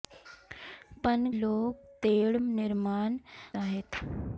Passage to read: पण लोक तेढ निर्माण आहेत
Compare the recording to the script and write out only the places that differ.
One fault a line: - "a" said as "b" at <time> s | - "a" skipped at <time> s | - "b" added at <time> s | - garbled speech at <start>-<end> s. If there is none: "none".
none